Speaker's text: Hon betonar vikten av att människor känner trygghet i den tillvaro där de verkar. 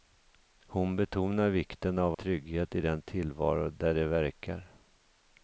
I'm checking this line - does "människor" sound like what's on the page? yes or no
no